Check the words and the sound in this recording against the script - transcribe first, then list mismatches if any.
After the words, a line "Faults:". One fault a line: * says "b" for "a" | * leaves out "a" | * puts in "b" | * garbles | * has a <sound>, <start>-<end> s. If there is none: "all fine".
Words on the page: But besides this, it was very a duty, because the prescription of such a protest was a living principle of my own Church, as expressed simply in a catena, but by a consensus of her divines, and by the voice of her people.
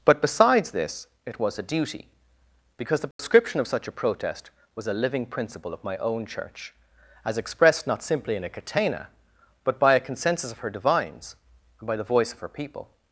But besides this, it was a duty, because the prescription of such a protest was a living principle of my own Church, as expressed not simply in a catena, but by a consensus of her divines, and by the voice of her people.
Faults:
* leaves out "very"
* has a dropout, 3.1-3.2 s
* puts in "not"